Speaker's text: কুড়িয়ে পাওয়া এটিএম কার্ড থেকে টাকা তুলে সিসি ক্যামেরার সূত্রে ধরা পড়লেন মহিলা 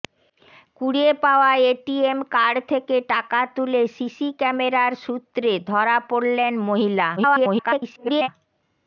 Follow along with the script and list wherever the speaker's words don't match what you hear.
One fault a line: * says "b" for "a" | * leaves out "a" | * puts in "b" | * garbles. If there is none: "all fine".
* garbles